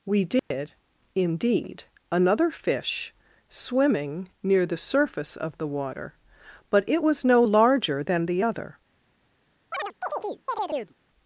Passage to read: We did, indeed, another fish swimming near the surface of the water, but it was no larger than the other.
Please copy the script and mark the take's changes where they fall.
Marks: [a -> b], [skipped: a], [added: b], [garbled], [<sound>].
We did, [dropout] indeed, another fish swimming near the surface of the water, but it was no larger than the other. [chirp]